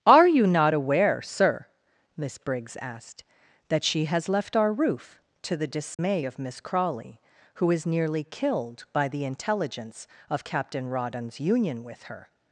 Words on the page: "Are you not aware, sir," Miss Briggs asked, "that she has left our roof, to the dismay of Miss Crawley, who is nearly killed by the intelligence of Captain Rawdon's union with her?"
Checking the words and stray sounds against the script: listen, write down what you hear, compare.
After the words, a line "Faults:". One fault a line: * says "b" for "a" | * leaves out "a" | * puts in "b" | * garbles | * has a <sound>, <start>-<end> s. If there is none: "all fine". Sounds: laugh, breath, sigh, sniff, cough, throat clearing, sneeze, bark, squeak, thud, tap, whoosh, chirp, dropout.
"Are you not aware, sir," Miss Briggs asked, "that she has left our roof, to the dismay of Miss Crawley, who is nearly killed by the intelligence of Captain Rawdon's union with her?"
Faults:
* has a dropout, 5.9-6.0 s